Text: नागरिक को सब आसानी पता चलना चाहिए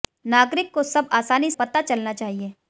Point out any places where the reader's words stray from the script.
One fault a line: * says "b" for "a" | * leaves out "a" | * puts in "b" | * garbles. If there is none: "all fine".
all fine